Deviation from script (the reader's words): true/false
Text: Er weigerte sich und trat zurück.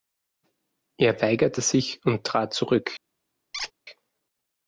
false